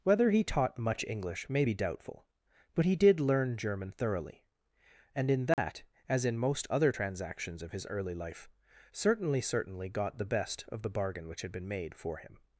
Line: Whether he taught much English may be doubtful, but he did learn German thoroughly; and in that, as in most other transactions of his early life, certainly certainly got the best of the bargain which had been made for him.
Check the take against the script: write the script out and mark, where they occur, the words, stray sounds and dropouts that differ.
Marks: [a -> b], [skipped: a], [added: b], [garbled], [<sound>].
Whether he taught much English may be doubtful, but he did learn German thoroughly; and in that, [dropout] as in most other transactions of his early life, certainly certainly got the best of the bargain which had been made for him.